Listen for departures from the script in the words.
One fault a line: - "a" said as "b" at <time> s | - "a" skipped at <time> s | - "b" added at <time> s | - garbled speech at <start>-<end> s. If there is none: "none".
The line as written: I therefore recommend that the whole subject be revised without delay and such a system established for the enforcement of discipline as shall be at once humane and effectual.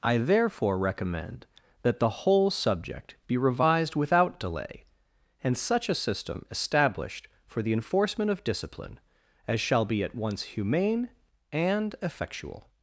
none